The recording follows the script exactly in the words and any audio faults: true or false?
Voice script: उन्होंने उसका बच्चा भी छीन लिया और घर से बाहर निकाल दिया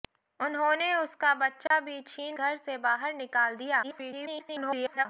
false